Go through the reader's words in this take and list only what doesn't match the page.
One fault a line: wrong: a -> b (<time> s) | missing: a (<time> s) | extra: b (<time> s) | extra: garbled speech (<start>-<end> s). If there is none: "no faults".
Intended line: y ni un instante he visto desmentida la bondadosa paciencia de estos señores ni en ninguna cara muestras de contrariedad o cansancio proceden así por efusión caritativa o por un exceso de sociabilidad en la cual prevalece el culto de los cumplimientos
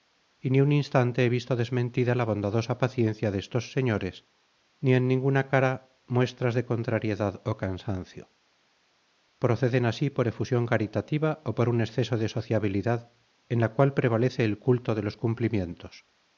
no faults